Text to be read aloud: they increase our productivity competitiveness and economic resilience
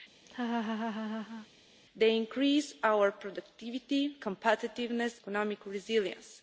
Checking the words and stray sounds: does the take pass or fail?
fail